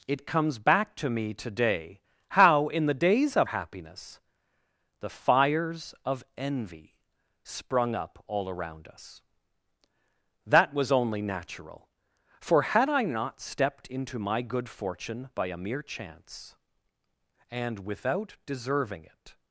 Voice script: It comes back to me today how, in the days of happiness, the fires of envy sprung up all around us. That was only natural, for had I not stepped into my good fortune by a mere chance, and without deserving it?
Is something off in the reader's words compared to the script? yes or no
no